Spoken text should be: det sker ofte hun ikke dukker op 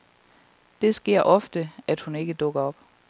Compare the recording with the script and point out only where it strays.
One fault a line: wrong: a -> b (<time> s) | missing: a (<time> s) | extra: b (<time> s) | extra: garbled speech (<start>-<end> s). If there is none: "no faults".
extra: at (1.9 s)